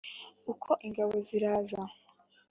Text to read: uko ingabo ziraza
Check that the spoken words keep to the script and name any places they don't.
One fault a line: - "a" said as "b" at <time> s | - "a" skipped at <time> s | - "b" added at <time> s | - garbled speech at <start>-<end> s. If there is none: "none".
none